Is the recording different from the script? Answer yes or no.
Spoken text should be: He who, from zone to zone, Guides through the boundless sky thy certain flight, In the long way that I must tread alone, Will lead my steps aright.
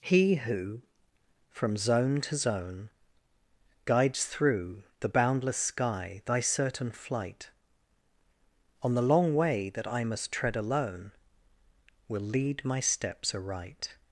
yes